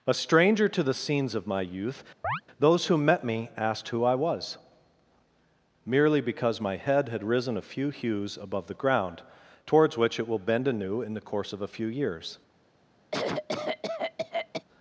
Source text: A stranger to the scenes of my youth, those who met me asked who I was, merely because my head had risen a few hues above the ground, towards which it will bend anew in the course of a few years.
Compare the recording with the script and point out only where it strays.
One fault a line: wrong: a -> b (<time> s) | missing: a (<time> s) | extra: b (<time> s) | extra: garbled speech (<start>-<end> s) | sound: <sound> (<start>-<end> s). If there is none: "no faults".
sound: chirp (2.2-2.4 s)
sound: cough (13.1-14.6 s)